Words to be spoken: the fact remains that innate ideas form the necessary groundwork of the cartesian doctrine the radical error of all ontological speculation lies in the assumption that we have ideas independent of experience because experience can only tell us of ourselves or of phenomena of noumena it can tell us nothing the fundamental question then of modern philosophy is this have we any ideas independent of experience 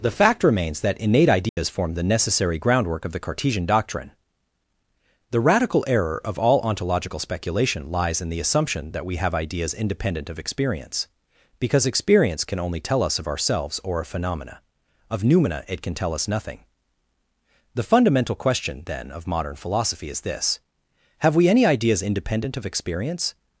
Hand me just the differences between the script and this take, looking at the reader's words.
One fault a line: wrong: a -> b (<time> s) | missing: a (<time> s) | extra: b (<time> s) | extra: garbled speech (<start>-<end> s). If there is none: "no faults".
no faults